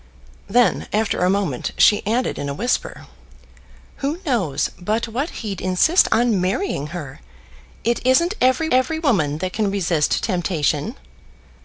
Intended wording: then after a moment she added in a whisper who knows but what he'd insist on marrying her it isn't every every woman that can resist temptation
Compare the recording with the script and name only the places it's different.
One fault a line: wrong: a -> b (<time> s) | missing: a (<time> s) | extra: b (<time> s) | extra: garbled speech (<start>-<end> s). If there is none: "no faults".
no faults